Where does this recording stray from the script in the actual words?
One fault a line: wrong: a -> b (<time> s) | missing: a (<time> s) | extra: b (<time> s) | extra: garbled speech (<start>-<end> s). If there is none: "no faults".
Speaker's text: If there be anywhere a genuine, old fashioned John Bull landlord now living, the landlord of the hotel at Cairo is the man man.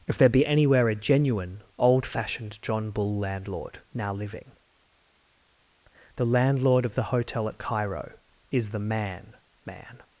no faults